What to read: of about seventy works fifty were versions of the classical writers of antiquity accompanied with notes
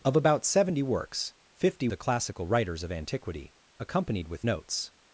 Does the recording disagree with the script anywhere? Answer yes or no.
yes